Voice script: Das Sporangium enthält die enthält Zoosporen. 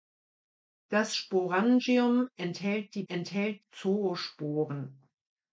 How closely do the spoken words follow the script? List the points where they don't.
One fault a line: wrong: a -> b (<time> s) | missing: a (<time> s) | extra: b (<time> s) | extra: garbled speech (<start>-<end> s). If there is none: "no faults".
no faults